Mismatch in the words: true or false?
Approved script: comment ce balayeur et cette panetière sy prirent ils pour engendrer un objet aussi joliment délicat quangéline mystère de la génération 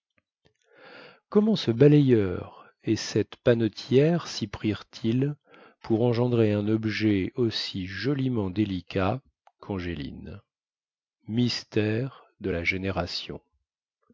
false